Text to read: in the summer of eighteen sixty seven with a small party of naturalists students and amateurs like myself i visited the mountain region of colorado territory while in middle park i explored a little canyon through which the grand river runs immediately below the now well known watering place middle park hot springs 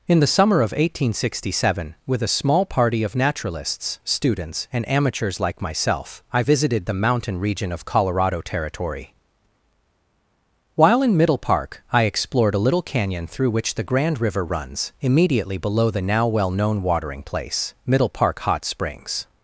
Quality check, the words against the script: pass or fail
pass